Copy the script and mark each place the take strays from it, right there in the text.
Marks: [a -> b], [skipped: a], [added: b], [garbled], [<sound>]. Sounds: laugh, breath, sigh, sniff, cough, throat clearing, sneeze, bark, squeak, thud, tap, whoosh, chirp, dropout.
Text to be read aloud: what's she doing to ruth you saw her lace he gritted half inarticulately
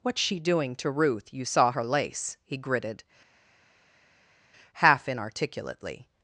what's she doing to ruth you saw her lace he gritted half inarticulately